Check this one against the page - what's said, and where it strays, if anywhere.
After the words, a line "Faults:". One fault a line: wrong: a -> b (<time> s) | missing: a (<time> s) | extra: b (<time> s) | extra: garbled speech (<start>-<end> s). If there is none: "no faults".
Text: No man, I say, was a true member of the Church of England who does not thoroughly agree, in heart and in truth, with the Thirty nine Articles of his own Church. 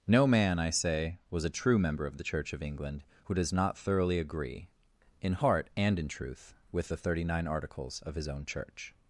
No man, I say, was a true member of the Church of England who does not thoroughly agree, in heart and in truth, with the Thirty nine Articles of his own Church.
Faults:
no faults